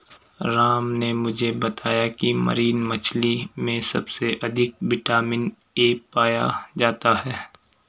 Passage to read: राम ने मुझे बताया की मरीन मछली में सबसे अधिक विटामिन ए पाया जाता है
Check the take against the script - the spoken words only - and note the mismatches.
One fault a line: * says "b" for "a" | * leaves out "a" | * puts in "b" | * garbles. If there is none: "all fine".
all fine